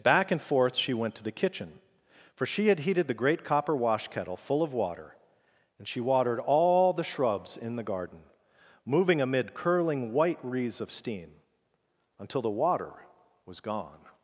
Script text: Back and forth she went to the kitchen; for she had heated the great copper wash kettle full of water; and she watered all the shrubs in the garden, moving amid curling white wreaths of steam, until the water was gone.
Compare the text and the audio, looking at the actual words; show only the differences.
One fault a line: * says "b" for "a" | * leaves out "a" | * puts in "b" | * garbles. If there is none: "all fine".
all fine